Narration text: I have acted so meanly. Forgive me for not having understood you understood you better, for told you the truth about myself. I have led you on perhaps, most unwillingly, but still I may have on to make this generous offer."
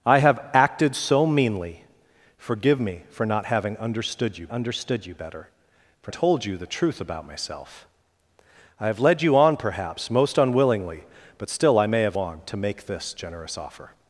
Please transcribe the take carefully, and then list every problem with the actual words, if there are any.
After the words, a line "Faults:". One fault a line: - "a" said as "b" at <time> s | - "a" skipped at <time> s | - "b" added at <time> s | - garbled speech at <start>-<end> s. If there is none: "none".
I have acted so meanly. Forgive me for not having understood you understood you better, for told you the truth about myself. I have led you on perhaps, most unwillingly, but still I may have on to make this generous offer."
Faults:
none